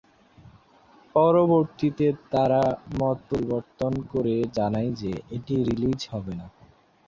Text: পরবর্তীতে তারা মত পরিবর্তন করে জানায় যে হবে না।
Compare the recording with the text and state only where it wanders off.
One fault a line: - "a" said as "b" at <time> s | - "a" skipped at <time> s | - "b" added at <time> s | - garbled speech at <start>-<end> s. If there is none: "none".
- "এটি রিলিজ" added at 5.3 s